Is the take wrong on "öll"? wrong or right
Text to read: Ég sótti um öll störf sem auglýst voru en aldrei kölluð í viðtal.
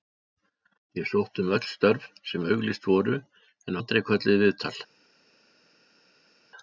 right